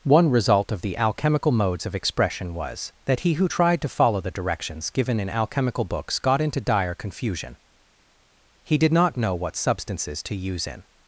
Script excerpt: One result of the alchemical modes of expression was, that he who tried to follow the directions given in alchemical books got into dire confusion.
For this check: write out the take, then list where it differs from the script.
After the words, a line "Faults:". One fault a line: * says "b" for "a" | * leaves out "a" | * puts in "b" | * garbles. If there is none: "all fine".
One result of the alchemical modes of expression was, that he who tried to follow the directions given in alchemical books got into dire confusion. He did not know what substances to use in
Faults:
* puts in "He did not know what substances to use in"